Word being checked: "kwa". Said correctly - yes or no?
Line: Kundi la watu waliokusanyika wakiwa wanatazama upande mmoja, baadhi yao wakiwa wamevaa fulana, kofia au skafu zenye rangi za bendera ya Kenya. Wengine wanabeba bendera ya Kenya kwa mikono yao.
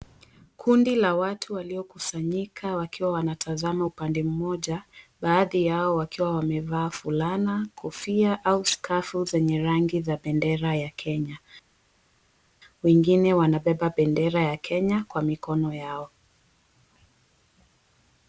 yes